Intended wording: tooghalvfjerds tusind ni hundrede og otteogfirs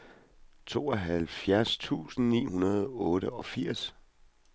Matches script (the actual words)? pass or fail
pass